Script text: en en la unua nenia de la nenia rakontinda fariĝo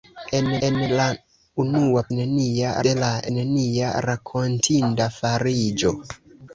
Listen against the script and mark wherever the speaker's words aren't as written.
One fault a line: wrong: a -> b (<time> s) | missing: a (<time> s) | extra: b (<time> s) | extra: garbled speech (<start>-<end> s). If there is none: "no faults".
no faults